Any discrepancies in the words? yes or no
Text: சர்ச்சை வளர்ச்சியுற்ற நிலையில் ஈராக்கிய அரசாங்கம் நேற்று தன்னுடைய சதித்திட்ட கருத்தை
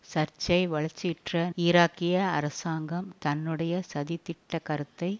yes